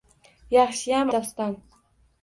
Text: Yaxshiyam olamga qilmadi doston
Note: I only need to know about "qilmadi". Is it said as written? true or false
false